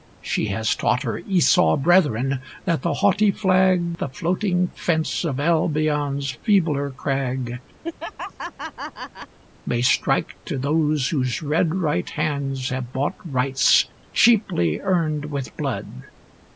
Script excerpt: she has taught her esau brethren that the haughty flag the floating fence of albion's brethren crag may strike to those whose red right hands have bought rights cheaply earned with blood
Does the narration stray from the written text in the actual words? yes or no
yes